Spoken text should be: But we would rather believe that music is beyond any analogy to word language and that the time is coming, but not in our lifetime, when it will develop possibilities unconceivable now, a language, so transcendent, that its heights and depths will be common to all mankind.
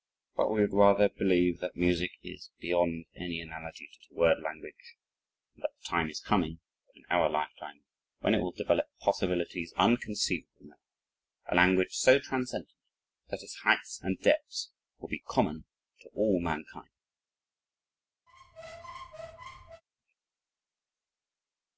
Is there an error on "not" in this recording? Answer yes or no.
yes